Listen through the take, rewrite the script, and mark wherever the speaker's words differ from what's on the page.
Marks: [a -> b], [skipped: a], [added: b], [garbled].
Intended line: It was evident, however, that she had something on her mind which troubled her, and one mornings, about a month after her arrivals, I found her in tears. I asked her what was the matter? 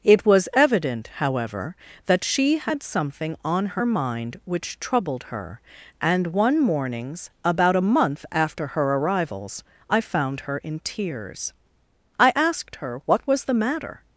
It was evident, however, that she had something on her mind which troubled her, and one mornings, about a month after her arrivals, I found her in tears. I asked her what was the matter?